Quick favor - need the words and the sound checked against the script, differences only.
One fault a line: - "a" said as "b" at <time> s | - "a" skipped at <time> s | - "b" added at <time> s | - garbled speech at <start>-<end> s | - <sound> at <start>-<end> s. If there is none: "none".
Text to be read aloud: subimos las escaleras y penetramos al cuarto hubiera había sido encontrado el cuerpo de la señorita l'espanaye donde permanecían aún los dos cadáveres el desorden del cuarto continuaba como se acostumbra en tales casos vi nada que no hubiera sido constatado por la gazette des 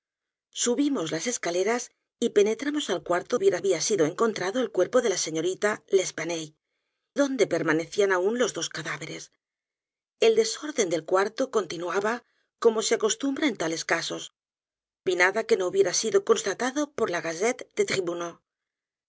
none